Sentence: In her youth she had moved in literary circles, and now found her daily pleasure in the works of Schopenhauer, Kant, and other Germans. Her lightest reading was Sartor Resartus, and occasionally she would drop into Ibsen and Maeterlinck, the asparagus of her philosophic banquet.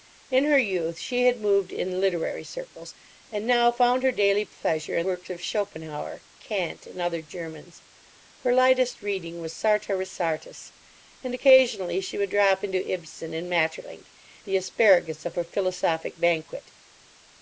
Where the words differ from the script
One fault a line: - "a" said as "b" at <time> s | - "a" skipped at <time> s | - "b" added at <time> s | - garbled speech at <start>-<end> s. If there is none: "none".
- "the" skipped at 5.0 s